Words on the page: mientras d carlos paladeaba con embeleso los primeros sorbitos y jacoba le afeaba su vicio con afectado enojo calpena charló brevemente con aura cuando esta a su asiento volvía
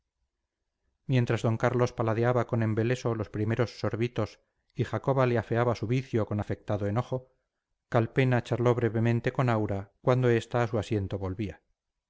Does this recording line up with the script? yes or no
yes